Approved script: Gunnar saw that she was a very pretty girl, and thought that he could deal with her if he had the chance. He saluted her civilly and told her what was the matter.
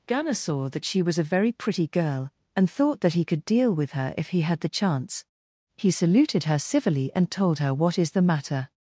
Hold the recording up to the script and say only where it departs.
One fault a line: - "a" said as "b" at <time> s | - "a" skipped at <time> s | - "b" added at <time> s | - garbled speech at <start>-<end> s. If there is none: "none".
- "was" said as "is" at 8.0 s